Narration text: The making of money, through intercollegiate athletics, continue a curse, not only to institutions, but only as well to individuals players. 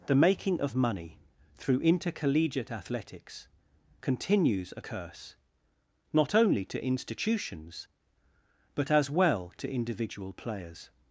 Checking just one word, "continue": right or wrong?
wrong